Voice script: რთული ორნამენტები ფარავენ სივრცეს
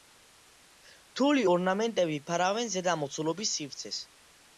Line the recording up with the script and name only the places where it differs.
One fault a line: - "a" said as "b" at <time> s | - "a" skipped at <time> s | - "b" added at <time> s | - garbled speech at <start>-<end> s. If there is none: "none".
- "ზედა მოცულობის" added at 2.8 s